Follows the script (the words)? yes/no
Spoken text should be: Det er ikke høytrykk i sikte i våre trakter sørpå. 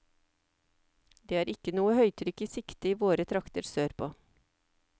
no